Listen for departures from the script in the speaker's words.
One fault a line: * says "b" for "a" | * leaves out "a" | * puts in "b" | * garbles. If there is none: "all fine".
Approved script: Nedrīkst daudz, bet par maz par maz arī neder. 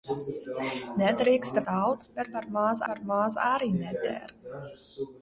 all fine